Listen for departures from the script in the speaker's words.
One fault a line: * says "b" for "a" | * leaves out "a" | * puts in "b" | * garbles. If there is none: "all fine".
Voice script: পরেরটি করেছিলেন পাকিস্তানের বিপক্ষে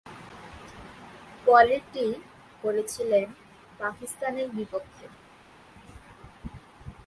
all fine